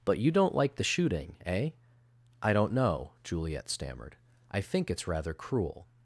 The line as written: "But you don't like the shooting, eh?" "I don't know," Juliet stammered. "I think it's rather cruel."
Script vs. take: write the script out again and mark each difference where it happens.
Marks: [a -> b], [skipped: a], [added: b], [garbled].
"But you don't like the shooting, eh?" "I don't know," Juliet stammered. "I think it's rather cruel."